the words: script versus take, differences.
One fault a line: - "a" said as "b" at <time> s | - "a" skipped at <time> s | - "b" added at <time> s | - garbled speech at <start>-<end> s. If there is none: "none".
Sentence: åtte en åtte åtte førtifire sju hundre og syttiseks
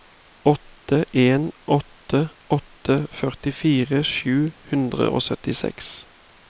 none